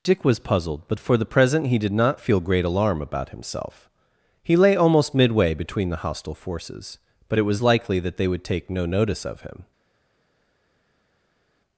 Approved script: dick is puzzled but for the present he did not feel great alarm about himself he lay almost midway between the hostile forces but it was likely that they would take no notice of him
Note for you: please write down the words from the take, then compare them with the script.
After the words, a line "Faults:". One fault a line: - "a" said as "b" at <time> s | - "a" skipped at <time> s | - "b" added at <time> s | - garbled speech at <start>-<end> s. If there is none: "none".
dick was puzzled but for the present he did not feel great alarm about himself he lay almost midway between the hostile forces but it was likely that they would take no notice of him
Faults:
- "is" said as "was" at 0.2 s